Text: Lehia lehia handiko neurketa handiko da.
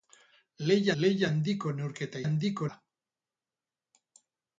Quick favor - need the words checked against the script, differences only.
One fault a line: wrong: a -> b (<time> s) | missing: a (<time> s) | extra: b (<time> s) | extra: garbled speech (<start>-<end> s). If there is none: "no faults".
no faults